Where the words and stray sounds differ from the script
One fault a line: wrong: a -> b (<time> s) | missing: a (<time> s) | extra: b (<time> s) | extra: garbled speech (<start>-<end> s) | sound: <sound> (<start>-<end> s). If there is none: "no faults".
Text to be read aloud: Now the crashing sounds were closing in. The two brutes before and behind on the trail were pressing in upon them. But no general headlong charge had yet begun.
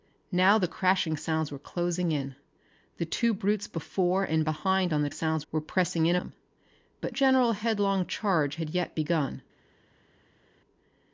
wrong: trail -> sounds (5.1 s)
missing: upon (6.2 s)
missing: no (7.1 s)